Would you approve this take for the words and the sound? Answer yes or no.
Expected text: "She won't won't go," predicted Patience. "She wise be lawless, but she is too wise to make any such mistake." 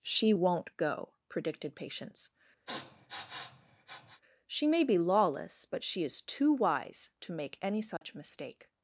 no